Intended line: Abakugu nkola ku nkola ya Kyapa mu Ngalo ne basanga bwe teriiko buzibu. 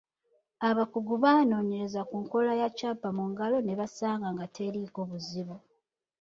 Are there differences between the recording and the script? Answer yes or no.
yes